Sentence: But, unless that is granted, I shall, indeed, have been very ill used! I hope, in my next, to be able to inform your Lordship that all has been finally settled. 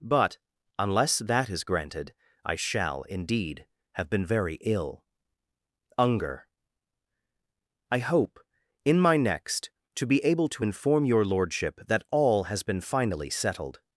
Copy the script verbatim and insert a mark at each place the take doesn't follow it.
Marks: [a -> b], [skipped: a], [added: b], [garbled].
But, unless that is granted, I shall, indeed, have been very ill [used! -> unger] I hope, in my next, to be able to inform your Lordship that all has been finally settled.